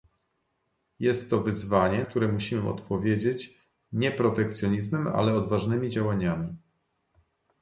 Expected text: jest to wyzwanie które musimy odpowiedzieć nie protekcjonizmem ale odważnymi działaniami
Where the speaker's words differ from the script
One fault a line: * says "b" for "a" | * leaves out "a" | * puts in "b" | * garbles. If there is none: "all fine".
all fine